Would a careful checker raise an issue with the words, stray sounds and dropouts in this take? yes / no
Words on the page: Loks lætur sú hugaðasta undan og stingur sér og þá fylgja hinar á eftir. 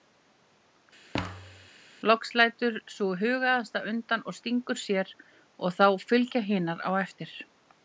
yes